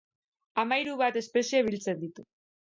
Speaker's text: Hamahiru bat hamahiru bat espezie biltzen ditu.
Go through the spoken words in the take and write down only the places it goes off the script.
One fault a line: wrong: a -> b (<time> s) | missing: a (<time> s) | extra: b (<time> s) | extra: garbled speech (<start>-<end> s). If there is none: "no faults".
missing: hamahiru bat (1.2 s)